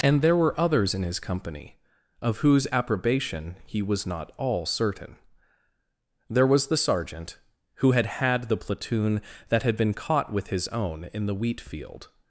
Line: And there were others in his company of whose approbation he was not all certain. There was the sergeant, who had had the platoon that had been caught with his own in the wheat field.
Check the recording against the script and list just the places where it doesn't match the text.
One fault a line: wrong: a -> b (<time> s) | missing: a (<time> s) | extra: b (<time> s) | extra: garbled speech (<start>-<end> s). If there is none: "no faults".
no faults